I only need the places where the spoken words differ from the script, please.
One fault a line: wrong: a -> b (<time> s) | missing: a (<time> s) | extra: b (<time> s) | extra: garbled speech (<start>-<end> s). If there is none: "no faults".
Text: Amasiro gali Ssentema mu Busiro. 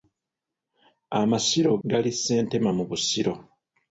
no faults